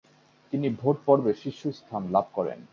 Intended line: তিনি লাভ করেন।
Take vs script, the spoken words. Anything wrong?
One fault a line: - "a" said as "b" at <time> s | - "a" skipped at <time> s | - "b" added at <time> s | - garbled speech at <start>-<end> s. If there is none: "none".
- "ভোট পর্বে শীর্ষস্থান" added at 0.8 s